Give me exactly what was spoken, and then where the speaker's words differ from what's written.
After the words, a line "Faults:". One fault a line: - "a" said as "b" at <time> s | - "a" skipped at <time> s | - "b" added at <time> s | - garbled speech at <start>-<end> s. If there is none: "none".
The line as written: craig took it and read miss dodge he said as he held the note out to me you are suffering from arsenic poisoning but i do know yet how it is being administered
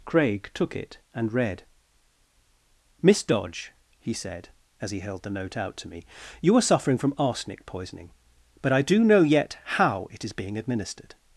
craig took it and read miss dodge he said as he held the note out to me you are suffering from arsenic poisoning but i do know yet how it is being administered
Faults:
none